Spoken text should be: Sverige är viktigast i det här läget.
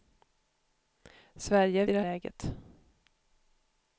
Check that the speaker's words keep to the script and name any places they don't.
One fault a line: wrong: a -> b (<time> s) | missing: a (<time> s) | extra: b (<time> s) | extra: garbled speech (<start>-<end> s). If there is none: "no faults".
missing: viktigast (1.9 s)
missing: här (2.0 s)